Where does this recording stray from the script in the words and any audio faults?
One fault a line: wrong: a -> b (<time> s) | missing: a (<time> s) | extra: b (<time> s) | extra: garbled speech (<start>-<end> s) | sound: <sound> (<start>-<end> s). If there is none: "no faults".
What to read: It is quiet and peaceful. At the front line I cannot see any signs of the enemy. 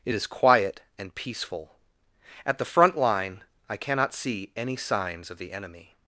no faults